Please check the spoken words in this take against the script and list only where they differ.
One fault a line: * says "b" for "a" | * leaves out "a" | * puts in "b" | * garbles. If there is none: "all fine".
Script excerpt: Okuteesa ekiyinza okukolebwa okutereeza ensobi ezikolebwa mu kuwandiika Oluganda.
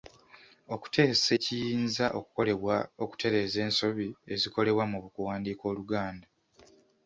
all fine